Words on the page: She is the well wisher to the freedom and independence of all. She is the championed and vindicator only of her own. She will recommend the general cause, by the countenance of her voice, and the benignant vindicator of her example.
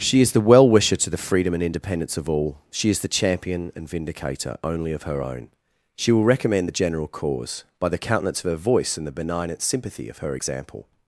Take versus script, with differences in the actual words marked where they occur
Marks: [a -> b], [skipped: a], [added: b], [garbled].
She is the well wisher to the freedom and independence of all. She is the [championed -> champion] and vindicator only of her own. She will recommend the general cause, by the countenance of her voice, and the benignant [vindicator -> sympathy] of her example.